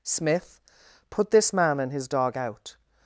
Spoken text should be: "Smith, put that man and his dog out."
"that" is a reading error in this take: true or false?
true